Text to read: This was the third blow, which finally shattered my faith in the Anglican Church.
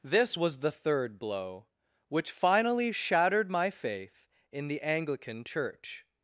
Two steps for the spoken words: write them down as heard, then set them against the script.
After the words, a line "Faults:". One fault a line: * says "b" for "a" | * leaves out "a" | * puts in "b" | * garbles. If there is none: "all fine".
This was the third blow, which finally shattered my faith in the Anglican Church.
Faults:
all fine